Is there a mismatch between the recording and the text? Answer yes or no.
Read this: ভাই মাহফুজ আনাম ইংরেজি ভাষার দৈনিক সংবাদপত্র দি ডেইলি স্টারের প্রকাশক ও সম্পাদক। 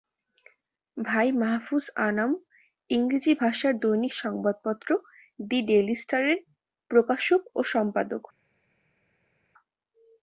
no